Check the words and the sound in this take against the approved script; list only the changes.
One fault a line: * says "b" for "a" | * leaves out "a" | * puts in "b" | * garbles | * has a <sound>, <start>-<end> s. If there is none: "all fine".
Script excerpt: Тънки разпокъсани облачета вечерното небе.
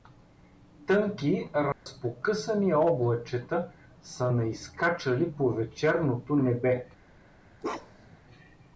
* has a dropout, 1.7-1.9 s
* puts in "са наизскачали по"
* has a bark, 7.6-8.2 s